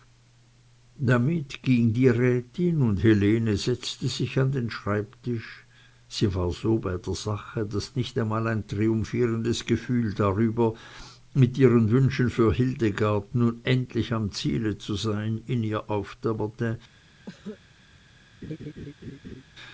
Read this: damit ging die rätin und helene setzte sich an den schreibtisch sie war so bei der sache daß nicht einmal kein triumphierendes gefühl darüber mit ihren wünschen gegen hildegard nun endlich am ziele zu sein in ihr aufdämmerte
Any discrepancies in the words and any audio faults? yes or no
yes